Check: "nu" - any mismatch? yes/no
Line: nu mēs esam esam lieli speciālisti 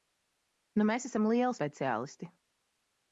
no